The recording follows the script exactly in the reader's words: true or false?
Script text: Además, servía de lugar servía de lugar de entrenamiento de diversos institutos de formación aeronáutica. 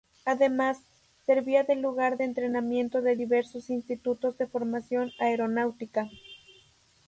false